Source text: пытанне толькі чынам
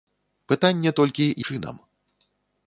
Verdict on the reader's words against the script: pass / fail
pass